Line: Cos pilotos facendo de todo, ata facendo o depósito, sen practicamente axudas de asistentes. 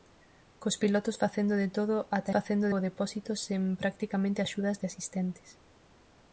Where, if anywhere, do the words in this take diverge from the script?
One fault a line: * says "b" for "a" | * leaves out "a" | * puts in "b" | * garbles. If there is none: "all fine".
all fine